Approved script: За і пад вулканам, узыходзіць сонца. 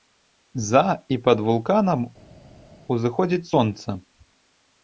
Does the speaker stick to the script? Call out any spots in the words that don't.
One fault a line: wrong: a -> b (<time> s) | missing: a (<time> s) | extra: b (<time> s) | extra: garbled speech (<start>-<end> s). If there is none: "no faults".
no faults